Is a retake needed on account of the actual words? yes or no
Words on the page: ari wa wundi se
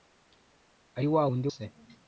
no